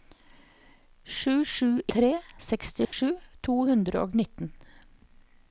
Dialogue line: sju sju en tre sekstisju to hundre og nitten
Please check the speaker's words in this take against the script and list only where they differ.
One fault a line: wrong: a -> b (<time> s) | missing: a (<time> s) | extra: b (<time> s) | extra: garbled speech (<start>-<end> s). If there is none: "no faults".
missing: en (1.7 s)